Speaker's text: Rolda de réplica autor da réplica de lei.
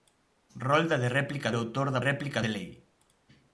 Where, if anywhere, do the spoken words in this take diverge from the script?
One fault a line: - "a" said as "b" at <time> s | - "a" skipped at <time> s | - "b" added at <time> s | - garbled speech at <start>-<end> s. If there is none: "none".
none